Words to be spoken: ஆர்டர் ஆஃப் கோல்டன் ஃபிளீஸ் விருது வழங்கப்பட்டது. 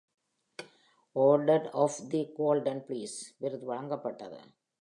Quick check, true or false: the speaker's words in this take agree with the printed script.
false